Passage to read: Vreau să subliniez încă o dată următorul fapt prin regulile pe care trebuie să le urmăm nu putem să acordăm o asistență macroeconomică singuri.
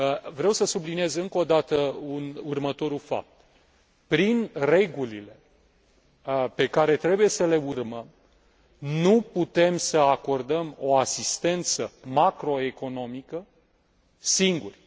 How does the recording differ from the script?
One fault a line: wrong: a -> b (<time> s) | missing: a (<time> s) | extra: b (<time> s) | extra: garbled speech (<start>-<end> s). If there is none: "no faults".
no faults